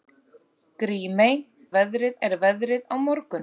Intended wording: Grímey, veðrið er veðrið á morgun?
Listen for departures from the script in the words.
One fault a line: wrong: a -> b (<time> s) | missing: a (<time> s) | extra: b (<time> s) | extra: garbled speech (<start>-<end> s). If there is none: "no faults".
no faults